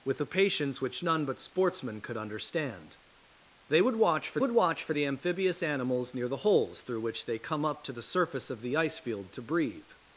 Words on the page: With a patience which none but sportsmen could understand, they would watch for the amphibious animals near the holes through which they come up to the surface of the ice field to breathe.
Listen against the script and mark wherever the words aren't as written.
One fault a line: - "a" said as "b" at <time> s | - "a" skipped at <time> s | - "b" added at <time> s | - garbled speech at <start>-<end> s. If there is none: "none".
- "would watch for" added at 4.4 s